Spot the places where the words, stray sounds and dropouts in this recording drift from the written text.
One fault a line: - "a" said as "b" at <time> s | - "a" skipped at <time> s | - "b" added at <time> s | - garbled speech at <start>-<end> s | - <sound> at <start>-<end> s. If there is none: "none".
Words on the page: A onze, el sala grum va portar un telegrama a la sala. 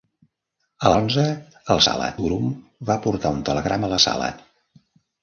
none